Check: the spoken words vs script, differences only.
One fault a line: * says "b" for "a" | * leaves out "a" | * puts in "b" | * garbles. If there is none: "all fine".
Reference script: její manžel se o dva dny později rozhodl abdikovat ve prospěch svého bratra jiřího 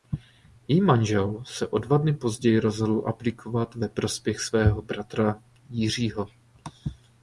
all fine